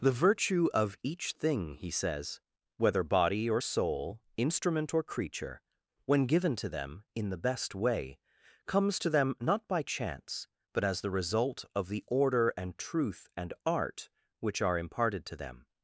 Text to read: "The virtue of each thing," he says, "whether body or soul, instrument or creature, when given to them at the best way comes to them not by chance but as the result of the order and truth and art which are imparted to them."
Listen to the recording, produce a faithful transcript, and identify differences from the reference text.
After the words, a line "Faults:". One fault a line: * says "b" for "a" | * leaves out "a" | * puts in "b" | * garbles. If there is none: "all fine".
"The virtue of each thing," he says, "whether body or soul, instrument or creature, when given to them in the best way comes to them not by chance but as the result of the order and truth and art which are imparted to them."
Faults:
* says "in" for "at"